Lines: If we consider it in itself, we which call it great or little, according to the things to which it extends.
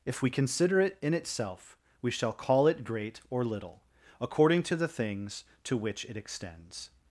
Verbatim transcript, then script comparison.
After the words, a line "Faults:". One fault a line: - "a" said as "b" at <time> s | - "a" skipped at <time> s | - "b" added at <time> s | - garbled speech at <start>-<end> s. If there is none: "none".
If we consider it in itself, we shall call it great or little, according to the things to which it extends.
Faults:
- "which" said as "shall" at 2.1 s